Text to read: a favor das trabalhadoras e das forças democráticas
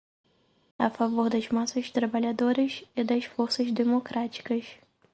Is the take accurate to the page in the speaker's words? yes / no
no